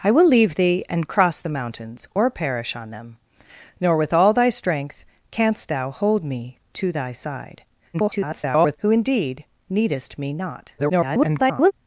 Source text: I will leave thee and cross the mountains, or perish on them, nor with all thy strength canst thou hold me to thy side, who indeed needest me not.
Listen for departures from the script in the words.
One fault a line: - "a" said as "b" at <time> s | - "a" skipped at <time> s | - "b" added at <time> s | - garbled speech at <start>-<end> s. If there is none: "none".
- garbled speech at 7.9-8.8 s
- garbled speech at 10.8-11.7 s